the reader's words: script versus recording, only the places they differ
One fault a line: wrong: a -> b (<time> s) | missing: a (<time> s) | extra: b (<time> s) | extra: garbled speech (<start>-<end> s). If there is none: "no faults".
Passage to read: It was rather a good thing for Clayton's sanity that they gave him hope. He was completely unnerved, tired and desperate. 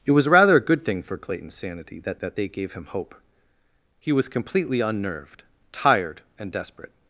extra: that (2.1 s)